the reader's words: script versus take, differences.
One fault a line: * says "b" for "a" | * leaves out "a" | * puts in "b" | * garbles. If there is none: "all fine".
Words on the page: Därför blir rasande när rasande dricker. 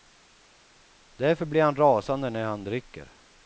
* puts in "han"
* says "han" for "rasande"